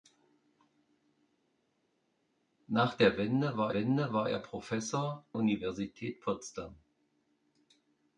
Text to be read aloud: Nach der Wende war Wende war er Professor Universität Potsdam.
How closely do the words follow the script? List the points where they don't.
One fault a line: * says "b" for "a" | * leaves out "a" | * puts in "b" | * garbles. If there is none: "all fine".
all fine